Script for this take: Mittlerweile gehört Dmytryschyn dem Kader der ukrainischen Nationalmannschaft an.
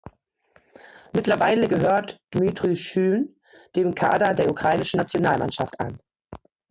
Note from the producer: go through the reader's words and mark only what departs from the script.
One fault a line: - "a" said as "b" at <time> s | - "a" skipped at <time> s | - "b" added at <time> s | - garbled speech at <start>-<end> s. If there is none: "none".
none